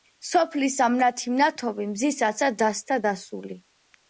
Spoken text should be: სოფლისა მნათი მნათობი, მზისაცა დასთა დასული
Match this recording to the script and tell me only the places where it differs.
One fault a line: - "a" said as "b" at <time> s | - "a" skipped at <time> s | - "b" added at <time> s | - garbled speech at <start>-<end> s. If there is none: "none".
none